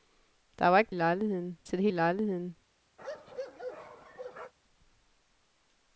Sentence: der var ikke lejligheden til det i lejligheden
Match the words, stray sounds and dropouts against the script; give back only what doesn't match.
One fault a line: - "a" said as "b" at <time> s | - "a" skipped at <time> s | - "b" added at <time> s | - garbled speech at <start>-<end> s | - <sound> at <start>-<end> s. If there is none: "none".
- bark at 3.0-4.5 s